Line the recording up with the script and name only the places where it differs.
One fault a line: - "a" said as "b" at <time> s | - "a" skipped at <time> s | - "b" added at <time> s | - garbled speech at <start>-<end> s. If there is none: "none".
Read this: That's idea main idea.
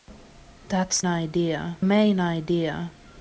none